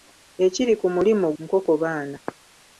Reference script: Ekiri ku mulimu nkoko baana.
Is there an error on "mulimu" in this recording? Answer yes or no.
no